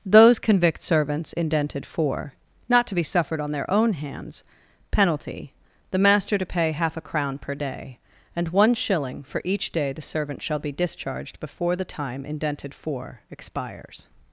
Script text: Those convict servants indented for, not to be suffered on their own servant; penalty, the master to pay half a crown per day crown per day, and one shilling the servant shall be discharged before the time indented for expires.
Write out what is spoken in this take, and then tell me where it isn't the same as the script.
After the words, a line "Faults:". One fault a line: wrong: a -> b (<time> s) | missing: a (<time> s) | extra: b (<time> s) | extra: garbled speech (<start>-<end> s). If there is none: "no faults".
Those convict servants indented for, not to be suffered on their own hands; penalty, the master to pay half a crown per day, and one shilling for each day the servant shall be discharged before the time indented for expires.
Faults:
wrong: servant -> hands (3.9 s)
wrong: crown per day and one shilling -> and one shilling for each day (8.3 s)